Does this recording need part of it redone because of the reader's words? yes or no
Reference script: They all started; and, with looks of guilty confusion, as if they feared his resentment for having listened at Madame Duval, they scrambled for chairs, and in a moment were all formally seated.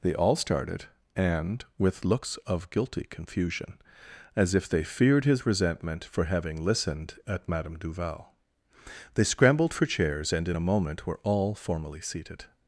no